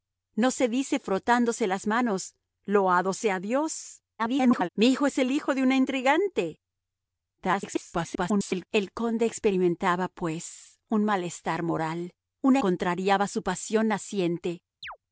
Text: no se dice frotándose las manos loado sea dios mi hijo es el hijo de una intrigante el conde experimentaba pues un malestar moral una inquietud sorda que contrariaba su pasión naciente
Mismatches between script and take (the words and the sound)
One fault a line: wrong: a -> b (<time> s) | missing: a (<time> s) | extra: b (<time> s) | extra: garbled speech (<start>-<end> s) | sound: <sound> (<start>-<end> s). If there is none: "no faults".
extra: garbled speech (4.2-4.7 s)
extra: garbled speech (7.4-8.7 s)
missing: inquietud sorda que (12.6 s)
sound: chirp (14.8-15.0 s)